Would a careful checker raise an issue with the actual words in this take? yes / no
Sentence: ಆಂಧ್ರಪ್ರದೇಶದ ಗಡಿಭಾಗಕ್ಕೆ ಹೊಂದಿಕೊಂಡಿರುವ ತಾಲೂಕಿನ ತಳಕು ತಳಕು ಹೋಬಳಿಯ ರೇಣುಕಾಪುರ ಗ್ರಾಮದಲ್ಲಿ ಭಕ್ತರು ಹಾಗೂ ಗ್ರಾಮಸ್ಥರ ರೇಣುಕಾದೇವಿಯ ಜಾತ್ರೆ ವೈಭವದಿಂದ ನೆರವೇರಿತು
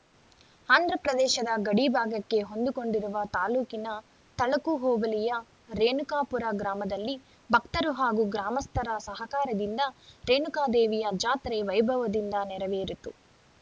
yes